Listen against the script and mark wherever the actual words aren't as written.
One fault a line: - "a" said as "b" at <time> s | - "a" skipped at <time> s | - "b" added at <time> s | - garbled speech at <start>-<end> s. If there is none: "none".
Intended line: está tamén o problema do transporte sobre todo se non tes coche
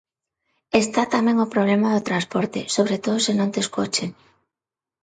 none